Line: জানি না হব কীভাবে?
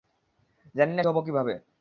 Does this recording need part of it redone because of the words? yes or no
no